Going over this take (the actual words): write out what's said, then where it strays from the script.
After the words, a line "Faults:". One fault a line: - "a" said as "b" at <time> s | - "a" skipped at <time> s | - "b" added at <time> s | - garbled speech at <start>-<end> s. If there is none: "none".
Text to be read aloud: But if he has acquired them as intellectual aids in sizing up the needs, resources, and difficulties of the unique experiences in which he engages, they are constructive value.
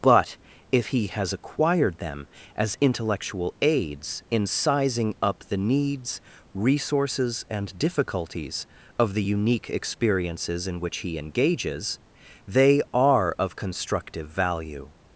But if he has acquired them as intellectual aids in sizing up the needs, resources, and difficulties of the unique experiences in which he engages, they are of constructive value.
Faults:
- "of" added at 13.4 s